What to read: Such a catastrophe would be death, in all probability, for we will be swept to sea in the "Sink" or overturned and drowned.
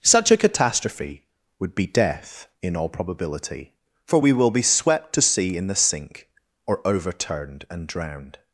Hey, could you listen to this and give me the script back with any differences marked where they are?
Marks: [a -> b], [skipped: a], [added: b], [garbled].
Such a catastrophe would be death, in all probability, for we will be swept to sea in the "Sink" or overturned and drowned.